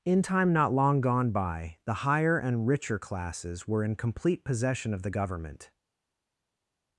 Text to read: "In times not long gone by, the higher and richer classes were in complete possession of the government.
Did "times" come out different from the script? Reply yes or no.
yes